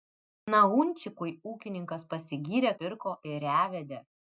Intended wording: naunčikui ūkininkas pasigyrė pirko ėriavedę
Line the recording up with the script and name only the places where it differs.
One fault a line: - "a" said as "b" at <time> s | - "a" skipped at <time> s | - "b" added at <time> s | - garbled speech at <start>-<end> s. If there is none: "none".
none